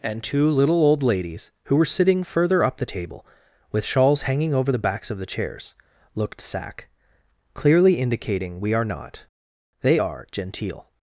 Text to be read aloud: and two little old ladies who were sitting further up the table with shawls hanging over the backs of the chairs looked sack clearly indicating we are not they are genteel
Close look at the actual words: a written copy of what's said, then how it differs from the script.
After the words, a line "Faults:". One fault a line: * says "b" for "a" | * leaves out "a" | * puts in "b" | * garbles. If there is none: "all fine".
and two little old ladies who were sitting further up the table with shawls hanging over the backs of the chairs looked sack clearly indicating we are not they are genteel
Faults:
all fine